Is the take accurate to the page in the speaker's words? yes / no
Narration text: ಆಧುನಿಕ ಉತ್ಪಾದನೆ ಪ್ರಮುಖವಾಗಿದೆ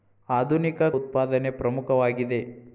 yes